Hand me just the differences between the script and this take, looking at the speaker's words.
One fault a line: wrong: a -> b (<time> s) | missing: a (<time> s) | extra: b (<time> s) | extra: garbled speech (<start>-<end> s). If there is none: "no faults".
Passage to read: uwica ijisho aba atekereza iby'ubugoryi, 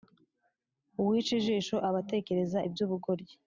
no faults